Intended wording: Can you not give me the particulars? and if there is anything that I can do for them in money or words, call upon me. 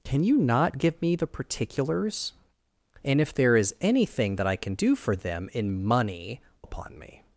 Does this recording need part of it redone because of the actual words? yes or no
yes